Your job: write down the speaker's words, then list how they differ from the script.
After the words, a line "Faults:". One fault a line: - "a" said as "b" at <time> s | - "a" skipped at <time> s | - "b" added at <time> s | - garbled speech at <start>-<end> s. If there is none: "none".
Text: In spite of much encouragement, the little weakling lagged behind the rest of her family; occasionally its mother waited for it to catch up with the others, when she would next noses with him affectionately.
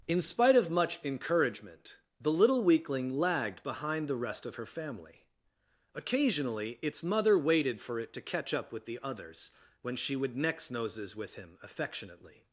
In spite of much encouragement, the little weakling lagged behind the rest of her family; occasionally its mother waited for it to catch up with the others, when she would next noses with him affectionately.
Faults:
none